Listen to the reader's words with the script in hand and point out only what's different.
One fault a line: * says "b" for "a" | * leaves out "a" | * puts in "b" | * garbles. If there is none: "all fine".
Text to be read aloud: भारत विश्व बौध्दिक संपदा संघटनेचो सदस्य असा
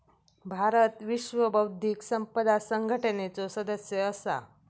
all fine